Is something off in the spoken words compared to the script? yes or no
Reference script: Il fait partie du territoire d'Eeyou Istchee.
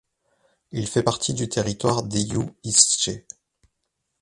no